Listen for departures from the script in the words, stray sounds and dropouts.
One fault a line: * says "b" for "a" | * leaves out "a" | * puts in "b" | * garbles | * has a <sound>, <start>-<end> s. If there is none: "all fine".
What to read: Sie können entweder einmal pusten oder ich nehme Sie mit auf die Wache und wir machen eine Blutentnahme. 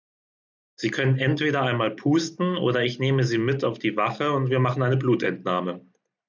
all fine